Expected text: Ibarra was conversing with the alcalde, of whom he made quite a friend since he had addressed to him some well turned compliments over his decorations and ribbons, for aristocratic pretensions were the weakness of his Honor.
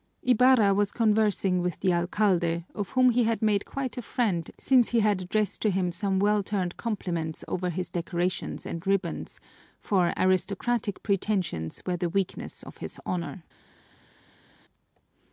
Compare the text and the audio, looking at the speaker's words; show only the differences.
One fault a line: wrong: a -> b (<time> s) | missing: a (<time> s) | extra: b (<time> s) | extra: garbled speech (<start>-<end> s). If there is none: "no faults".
extra: had (3.2 s)